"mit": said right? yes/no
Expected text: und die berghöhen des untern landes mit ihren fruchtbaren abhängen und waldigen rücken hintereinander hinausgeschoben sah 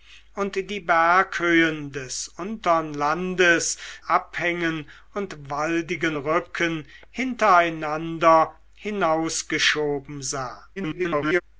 no